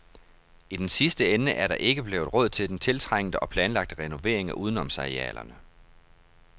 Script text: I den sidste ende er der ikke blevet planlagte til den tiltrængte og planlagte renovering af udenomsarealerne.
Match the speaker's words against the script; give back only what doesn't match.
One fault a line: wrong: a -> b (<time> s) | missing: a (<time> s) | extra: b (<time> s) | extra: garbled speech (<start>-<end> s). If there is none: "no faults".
wrong: planlagte -> råd (2.3 s)